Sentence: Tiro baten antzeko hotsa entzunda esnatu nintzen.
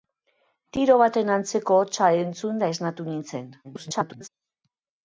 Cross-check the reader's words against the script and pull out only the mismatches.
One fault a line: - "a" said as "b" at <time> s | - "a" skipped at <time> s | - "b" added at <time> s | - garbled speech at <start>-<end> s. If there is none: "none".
- garbled speech at 3.6-4.3 s